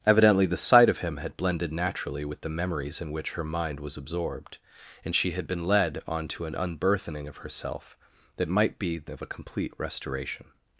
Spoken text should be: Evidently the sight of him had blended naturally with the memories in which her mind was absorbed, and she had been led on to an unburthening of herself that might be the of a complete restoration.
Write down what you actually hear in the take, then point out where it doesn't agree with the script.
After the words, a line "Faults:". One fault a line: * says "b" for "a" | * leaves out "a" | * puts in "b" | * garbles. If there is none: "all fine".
Evidently the sight of him had blended naturally with the memories in which her mind was absorbed, and she had been led on to an unburthening of herself that might be the of a complete restoration.
Faults:
all fine